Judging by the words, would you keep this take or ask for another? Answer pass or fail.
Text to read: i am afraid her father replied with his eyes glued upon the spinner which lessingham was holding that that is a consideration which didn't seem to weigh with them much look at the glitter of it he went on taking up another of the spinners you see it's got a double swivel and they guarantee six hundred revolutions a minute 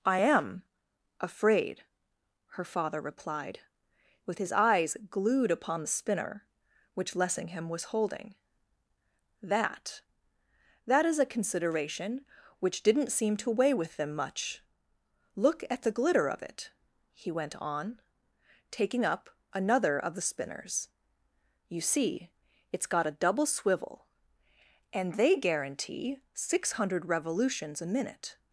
pass